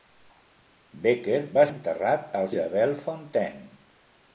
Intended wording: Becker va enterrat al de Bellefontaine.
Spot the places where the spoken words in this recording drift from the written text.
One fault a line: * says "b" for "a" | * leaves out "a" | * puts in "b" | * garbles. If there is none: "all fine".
all fine